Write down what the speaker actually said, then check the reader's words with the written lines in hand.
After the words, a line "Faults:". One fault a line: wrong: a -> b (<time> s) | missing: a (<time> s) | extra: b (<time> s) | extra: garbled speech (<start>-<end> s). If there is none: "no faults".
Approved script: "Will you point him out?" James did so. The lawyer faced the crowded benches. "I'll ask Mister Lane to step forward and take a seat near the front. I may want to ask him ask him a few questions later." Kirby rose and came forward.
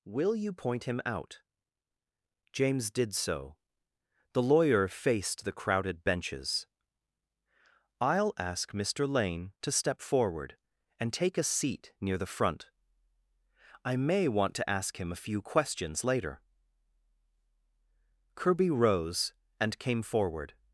"Will you point him out?" James did so. The lawyer faced the crowded benches. "I'll ask Mister Lane to step forward and take a seat near the front. I may want to ask him a few questions later." Kirby rose and came forward.
Faults:
missing: ask him (15.1 s)